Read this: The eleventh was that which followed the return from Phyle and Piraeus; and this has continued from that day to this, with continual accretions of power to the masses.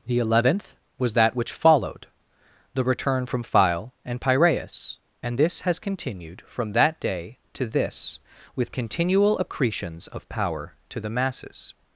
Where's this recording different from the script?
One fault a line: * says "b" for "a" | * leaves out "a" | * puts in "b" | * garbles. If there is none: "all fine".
all fine